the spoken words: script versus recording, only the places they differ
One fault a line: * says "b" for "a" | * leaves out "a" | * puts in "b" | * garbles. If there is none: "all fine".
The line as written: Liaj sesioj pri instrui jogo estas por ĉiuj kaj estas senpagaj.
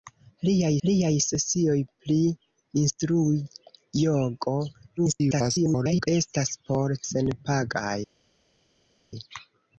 * puts in "liaj"
* garbles
* leaves out "ĉiuj kaj estas"